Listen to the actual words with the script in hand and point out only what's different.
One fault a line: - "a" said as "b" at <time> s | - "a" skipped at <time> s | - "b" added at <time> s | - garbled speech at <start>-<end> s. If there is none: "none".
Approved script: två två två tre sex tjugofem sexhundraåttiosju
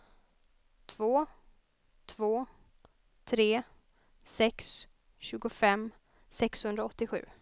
- "två" skipped at 2.5 s